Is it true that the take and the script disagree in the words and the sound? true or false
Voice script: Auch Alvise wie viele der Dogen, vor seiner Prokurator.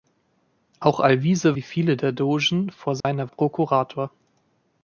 true